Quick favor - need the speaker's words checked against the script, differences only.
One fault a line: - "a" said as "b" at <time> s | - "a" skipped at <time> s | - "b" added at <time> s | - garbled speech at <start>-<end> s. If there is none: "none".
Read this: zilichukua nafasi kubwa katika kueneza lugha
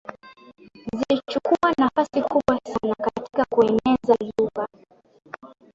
- "sana" added at 2.6 s